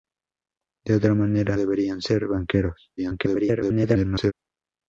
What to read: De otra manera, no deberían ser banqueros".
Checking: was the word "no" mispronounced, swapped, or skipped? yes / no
yes